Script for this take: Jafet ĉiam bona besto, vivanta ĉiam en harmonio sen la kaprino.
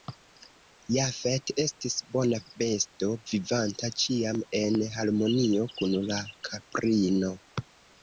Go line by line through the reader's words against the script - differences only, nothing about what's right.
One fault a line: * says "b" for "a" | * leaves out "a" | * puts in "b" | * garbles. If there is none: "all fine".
* says "estis" for "ĉiam"
* says "kun" for "sen"